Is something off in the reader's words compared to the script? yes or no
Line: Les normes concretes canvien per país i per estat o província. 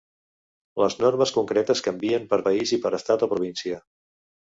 no